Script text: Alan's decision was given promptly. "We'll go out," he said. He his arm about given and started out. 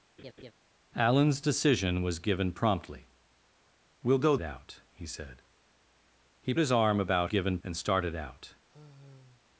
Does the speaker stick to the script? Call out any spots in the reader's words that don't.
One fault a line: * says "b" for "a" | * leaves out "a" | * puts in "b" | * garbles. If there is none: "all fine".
all fine